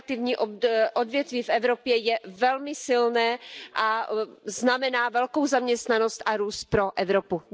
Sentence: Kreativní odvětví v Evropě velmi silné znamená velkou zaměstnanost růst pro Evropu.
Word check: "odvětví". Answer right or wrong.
right